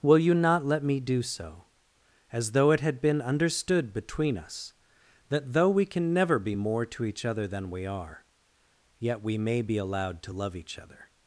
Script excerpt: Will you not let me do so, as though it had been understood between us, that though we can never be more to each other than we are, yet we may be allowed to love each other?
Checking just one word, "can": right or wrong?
right